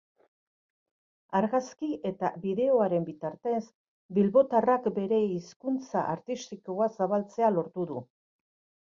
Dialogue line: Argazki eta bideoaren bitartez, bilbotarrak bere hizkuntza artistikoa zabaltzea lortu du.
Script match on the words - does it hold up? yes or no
yes